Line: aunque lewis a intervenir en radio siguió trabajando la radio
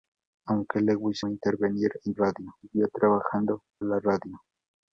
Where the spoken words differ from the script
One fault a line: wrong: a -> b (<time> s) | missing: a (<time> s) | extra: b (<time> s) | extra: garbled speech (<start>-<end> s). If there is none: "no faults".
no faults